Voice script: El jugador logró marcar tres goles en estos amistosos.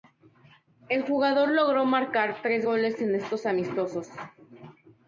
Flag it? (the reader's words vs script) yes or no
no